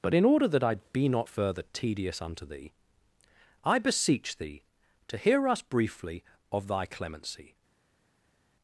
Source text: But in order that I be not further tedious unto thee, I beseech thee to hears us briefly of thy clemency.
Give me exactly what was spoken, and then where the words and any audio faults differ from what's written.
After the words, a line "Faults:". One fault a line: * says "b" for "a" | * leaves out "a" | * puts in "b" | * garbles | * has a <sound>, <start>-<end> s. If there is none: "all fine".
But in order that I be not further tedious unto thee, I beseech thee to hear us briefly of thy clemency.
Faults:
* says "hear" for "hears"